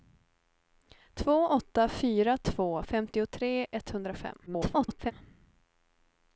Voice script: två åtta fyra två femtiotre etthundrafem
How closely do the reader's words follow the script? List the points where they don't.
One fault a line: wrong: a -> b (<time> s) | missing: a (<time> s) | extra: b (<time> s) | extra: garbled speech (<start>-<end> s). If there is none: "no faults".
extra: garbled speech (4.5-5.1 s)